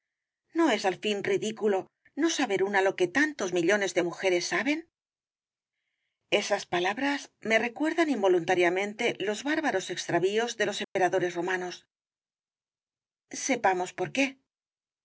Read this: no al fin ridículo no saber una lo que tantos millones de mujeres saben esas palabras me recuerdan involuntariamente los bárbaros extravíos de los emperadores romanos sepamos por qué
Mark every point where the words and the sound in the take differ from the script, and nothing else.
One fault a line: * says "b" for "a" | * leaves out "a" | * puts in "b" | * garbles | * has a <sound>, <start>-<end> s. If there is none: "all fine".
* puts in "es"
* has a dropout, 10.8-11.0 s